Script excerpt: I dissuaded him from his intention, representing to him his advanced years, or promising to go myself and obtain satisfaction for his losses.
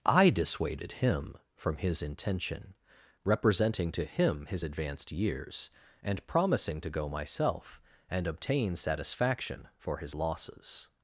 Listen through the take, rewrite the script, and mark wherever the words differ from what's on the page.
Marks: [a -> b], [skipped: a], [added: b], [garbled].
I dissuaded him from his intention, representing to him his advanced years, [or -> and] promising to go myself and obtain satisfaction for his losses.